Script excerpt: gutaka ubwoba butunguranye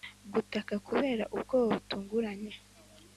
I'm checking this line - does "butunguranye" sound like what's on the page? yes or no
yes